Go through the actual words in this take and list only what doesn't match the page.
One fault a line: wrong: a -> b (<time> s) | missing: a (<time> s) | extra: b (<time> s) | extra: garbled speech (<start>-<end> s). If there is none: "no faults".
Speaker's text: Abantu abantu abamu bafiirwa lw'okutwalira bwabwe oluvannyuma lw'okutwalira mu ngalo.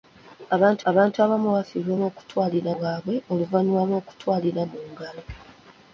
no faults